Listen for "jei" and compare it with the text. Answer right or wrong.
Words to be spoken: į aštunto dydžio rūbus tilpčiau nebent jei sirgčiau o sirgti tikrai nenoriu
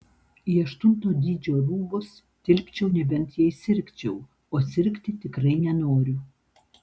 right